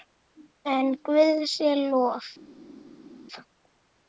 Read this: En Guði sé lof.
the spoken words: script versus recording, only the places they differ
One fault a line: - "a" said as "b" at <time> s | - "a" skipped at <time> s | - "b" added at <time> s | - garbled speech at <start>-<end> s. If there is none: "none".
none